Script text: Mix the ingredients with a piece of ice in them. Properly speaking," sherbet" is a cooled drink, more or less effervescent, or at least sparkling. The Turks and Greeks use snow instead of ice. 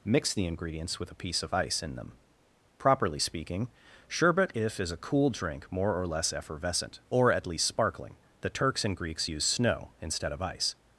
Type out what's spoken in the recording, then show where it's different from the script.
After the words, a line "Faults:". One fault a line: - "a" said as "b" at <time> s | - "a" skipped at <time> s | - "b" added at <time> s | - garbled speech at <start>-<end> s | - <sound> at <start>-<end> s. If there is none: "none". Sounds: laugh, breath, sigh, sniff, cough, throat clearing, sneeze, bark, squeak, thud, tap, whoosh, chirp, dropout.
Mix the ingredients with a piece of ice in them. Properly speaking," sherbet" if is a cool drink, more or less effervescent, or at least sparkling. The Turks and Greeks use snow instead of ice.
Faults:
- "if" added at 4.5 s
- "cooled" said as "cool" at 5.0 s